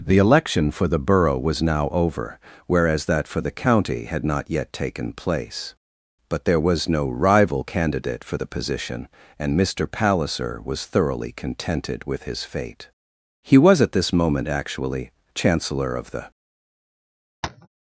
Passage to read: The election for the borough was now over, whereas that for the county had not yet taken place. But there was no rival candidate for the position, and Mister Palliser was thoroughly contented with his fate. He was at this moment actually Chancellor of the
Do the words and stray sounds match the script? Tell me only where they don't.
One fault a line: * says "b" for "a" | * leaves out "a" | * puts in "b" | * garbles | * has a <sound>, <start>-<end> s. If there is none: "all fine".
* has a tap, 17.4-17.7 s